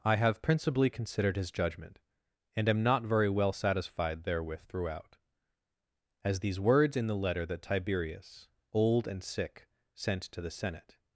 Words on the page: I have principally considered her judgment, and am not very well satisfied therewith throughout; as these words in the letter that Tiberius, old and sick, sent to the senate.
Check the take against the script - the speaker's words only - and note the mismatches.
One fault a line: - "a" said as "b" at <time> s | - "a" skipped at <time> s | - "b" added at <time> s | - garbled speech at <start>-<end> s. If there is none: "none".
- "her" said as "his" at 1.4 s